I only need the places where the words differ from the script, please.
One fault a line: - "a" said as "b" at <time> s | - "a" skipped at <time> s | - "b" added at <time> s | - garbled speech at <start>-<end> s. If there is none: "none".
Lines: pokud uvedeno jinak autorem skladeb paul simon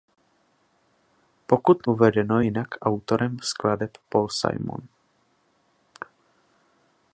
none